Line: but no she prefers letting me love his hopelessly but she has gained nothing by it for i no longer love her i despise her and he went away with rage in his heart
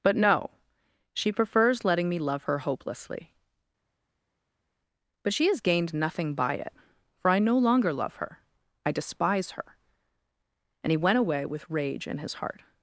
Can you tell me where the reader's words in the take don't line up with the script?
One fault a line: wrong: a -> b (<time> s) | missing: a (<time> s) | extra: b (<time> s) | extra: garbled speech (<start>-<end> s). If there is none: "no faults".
wrong: his -> her (2.4 s)